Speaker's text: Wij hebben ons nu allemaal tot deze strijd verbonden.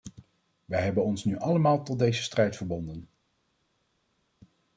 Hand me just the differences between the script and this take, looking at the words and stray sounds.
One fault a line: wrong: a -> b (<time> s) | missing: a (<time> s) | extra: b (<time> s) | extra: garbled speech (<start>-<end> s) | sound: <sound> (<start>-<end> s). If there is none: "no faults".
no faults